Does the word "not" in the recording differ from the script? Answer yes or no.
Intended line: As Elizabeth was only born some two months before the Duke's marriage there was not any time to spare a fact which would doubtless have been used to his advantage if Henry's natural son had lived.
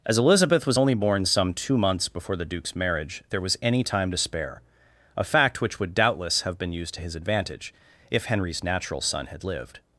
yes